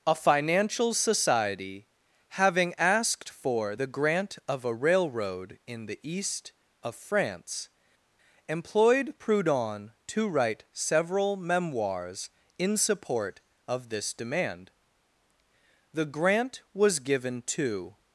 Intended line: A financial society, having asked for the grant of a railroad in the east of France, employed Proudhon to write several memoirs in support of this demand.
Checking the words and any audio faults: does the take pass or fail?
fail